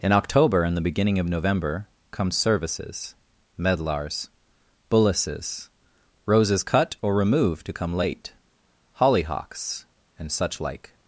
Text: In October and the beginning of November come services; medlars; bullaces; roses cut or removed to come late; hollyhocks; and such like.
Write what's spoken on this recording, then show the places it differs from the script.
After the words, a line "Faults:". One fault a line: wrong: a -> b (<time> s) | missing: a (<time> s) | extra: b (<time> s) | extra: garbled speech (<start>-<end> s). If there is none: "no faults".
In October and the beginning of November come services; medlars; bullaces; roses cut or removed to come late; hollyhocks; and such like.
Faults:
no faults